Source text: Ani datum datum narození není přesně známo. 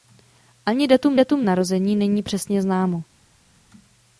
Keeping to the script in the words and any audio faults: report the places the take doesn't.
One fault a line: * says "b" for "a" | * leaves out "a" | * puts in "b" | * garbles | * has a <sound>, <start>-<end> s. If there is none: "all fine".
all fine